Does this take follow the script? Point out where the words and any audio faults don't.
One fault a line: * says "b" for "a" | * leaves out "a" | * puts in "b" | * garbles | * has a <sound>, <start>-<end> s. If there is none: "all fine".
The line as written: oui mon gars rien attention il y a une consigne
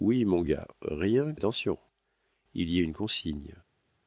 all fine